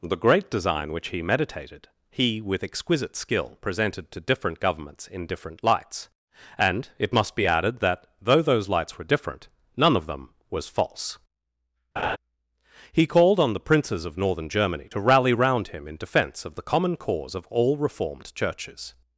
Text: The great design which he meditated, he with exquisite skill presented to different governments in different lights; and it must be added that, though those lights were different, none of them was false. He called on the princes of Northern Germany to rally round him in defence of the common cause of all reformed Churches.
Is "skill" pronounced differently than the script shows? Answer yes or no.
no